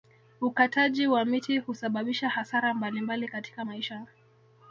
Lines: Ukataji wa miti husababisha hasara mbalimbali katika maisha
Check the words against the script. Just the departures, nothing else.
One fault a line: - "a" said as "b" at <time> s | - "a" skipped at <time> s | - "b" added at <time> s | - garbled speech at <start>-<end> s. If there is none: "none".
none